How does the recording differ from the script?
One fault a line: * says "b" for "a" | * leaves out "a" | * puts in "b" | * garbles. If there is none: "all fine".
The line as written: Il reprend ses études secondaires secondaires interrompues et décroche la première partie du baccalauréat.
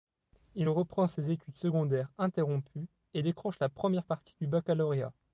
* leaves out "secondaires"